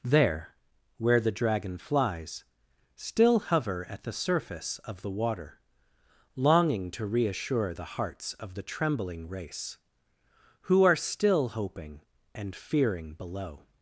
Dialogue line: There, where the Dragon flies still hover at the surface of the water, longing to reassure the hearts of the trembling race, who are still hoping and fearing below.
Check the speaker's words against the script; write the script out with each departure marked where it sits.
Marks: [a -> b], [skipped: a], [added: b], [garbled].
There, where the Dragon flies still hover at the surface of the water, longing to reassure the hearts of the trembling race, who are still hoping and fearing below.